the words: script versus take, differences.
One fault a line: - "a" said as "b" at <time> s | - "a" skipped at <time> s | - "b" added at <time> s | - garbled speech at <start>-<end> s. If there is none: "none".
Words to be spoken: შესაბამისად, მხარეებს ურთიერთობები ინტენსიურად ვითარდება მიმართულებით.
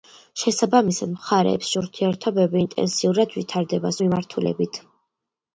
none